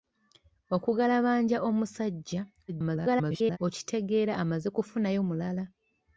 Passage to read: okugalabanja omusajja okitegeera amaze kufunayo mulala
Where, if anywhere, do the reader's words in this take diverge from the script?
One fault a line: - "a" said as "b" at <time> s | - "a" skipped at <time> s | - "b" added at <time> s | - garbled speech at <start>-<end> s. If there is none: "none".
- garbled speech at 2.7-3.6 s